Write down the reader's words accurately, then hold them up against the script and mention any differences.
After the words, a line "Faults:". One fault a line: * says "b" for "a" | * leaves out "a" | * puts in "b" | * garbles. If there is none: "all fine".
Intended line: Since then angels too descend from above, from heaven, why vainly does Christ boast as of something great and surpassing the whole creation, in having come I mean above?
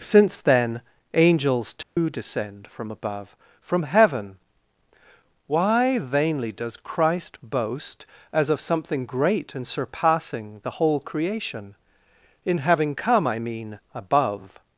Since then angels too descend from above, from heaven, why vainly does Christ boast as of something great and surpassing the whole creation, in having come I mean above?
Faults:
all fine